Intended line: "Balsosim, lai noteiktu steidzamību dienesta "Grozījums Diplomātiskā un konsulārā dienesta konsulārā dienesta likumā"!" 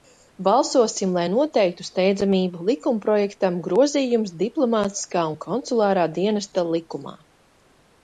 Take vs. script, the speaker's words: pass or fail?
fail